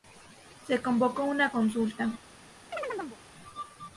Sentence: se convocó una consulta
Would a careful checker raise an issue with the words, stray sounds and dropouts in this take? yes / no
yes